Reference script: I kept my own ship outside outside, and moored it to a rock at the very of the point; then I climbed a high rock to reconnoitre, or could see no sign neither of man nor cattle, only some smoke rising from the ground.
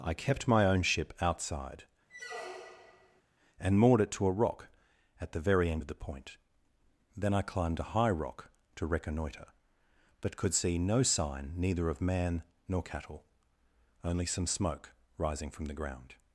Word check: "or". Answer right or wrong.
wrong